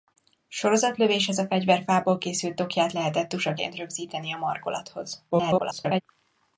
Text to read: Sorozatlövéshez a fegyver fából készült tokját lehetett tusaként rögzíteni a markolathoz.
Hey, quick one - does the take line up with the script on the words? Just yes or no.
no